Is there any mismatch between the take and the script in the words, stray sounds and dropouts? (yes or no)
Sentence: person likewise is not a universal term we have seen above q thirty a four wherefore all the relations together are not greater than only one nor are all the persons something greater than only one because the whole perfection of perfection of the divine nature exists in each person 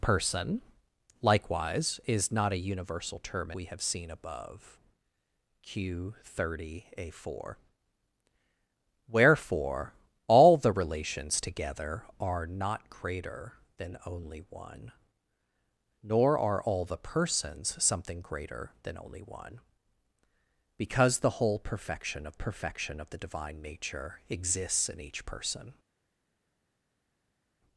no